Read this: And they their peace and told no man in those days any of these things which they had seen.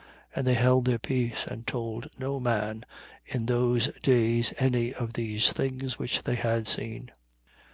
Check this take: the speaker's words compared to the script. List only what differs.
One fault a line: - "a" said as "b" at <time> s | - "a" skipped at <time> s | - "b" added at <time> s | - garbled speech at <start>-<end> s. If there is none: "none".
- "held" added at 0.6 s